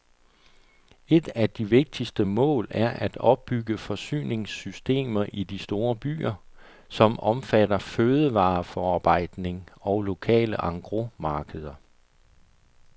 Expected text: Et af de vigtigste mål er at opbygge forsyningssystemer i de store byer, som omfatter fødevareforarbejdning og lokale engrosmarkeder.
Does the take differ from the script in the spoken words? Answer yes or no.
no